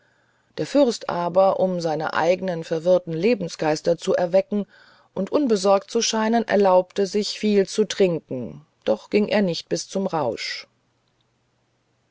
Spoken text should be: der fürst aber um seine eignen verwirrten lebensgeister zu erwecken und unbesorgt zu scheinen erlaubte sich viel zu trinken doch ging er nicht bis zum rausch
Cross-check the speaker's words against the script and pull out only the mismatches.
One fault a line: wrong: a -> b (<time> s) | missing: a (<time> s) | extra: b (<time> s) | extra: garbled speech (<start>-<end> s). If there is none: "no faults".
no faults